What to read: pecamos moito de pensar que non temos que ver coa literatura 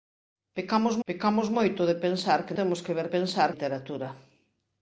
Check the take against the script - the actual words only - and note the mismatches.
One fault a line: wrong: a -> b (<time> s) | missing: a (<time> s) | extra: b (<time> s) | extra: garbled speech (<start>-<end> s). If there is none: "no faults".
extra: pecamos (1.1 s)
missing: non (2.6 s)
wrong: coa -> pensar (3.2 s)